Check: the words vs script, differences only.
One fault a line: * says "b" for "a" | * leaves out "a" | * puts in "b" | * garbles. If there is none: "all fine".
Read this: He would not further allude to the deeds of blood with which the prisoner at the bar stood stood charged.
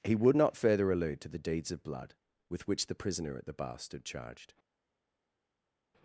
* leaves out "stood"